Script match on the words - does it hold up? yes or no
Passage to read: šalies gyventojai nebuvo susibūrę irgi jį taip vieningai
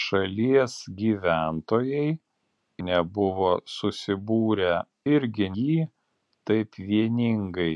yes